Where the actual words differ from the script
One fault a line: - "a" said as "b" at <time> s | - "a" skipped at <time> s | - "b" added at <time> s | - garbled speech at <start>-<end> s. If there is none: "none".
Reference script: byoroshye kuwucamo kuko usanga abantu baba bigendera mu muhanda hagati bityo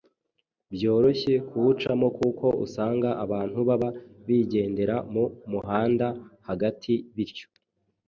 none